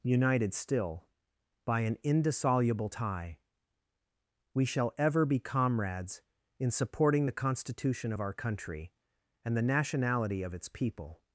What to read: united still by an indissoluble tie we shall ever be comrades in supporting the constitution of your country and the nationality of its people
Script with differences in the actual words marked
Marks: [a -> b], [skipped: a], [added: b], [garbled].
united still by an indissoluble tie we shall ever be comrades in supporting the constitution of [your -> our] country and the nationality of its people